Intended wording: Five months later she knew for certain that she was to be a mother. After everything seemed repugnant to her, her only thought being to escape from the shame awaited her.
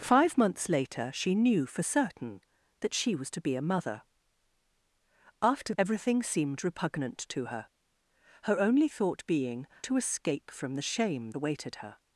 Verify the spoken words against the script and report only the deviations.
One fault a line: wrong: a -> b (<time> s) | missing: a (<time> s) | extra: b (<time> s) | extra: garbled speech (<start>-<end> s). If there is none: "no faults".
no faults